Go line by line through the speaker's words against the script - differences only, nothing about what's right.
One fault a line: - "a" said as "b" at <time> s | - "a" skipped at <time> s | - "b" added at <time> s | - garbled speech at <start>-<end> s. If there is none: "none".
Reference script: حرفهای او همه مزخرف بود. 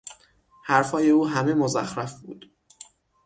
none